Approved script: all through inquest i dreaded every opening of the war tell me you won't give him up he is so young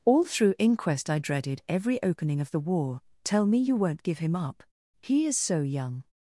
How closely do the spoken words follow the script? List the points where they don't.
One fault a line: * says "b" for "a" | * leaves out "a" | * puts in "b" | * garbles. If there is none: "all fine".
all fine